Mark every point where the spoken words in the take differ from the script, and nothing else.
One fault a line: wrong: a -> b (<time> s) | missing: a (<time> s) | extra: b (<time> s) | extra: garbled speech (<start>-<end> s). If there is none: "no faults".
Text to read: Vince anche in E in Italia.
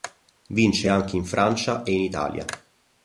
extra: Francia (1.3 s)